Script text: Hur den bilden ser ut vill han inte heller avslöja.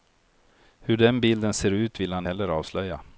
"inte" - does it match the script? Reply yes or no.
no